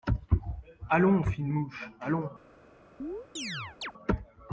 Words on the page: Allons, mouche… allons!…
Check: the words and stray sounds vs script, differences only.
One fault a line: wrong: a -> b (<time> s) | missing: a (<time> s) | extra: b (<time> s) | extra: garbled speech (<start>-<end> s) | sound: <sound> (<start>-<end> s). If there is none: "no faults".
extra: fine (1.2 s)
sound: chirp (3.0-3.9 s)